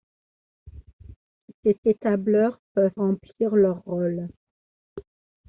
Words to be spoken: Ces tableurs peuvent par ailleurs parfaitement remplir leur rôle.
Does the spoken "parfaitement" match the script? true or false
false